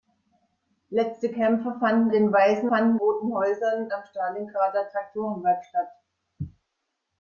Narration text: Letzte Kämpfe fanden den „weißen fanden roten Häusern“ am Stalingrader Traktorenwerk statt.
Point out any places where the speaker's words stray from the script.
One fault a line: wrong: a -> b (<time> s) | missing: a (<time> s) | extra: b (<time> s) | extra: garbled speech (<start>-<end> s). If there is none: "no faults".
no faults